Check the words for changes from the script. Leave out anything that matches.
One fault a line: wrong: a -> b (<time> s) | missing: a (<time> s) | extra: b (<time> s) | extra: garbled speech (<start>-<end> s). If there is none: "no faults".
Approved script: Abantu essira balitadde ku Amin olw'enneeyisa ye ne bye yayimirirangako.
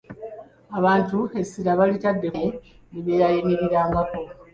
missing: ku Amin olw'enneeyisa (2.3 s)